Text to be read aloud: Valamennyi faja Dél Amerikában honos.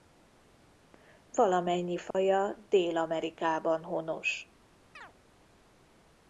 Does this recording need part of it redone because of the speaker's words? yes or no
no